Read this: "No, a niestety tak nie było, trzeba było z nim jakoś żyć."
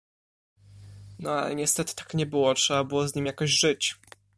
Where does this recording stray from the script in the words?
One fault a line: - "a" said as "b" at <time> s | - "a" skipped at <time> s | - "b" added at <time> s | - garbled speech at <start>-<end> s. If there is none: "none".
- "a" said as "ale" at 1.3 s